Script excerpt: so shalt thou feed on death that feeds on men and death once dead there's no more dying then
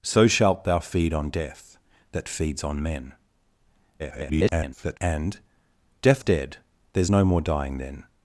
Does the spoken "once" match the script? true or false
false